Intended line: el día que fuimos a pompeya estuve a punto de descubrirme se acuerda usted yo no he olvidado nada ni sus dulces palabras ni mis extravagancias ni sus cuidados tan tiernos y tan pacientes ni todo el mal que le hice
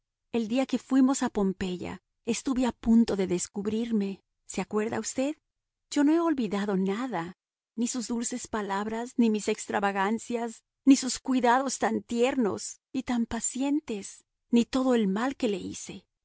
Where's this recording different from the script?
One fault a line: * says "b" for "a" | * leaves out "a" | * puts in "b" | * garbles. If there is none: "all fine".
all fine